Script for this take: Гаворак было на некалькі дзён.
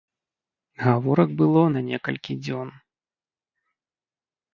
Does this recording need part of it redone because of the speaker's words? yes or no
no